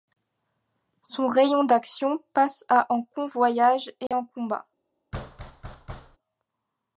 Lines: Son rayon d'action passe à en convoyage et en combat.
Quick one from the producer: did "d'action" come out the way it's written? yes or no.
yes